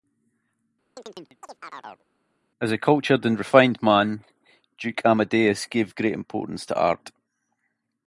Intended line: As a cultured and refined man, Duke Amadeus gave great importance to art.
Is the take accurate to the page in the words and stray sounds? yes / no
no